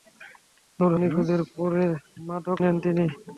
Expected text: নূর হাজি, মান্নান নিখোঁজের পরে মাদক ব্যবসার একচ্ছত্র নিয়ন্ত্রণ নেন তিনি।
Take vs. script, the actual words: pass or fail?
fail